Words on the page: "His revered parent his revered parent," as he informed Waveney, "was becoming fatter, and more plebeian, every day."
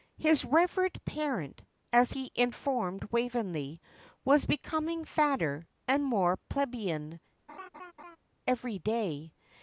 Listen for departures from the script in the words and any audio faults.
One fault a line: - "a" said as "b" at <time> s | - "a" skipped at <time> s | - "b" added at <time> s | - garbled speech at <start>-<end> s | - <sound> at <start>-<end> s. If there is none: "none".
- "his revered parent" skipped at 1.6 s
- laugh at 7.5-8.2 s